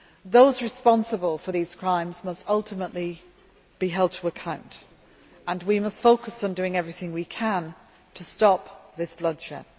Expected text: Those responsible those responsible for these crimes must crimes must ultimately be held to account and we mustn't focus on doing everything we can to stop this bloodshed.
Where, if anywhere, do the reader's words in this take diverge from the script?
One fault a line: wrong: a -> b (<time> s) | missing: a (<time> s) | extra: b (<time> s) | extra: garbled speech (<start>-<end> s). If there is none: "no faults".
missing: those responsible (1.4 s)
missing: crimes must (2.5 s)
wrong: mustn't -> must (5.8 s)